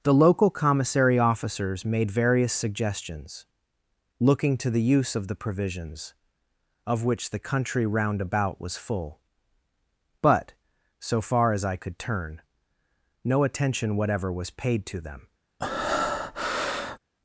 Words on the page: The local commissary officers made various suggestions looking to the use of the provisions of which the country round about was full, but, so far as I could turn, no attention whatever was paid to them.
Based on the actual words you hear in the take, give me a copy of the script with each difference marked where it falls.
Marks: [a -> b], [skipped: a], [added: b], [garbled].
The local commissary officers made various suggestions looking to the use of the provisions of which the country round about was full, but, so far as I could turn, no attention whatever was paid to them.